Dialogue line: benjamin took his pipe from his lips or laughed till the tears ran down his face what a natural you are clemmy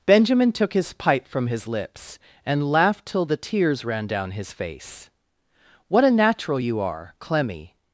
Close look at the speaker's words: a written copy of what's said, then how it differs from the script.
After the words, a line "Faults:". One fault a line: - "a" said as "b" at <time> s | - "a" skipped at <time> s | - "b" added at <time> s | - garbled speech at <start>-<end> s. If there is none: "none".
benjamin took his pipe from his lips and laughed till the tears ran down his face what a natural you are clemmy
Faults:
- "or" said as "and" at 2.5 s